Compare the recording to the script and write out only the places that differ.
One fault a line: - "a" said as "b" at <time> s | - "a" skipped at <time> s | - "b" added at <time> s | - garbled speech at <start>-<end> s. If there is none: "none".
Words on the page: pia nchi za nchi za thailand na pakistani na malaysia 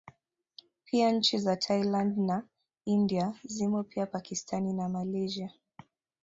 - "nchi za thailand na" said as "thailand na india zimo pia" at 1.6 s